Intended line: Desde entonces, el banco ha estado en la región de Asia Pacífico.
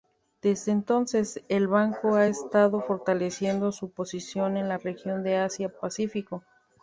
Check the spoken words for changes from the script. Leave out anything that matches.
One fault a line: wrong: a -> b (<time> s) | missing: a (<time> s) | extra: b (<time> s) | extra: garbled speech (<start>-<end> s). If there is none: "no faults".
extra: fortaleciendo su posición (2.8 s)